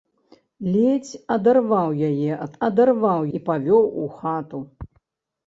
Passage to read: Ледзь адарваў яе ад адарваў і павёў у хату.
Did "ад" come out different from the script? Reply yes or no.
no